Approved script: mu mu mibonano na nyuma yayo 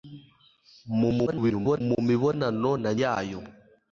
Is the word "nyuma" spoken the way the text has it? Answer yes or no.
no